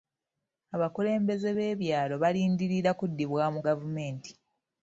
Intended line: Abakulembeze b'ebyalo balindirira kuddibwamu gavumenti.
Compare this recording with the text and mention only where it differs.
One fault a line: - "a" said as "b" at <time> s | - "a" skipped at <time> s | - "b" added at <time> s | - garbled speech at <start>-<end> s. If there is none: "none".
none